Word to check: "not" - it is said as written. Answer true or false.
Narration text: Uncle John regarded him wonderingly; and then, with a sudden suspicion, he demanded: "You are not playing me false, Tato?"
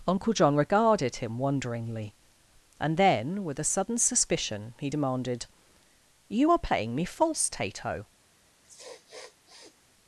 false